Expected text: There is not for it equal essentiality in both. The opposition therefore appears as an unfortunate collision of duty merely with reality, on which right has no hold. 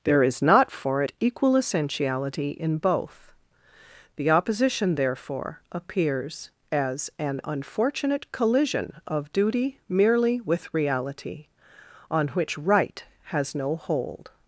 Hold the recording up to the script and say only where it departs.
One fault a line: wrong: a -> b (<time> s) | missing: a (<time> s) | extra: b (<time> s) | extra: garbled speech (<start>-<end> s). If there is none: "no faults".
no faults